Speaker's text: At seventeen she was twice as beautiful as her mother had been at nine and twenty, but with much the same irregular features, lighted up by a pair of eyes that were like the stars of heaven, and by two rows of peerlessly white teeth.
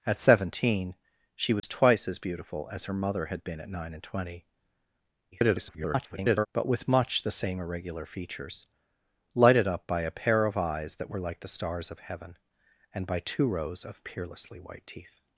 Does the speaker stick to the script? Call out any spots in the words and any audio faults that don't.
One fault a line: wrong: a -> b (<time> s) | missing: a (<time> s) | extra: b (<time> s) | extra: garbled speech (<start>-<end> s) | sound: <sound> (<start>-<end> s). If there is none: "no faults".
sound: dropout (1.6-1.6 s)
extra: garbled speech (5.3-6.5 s)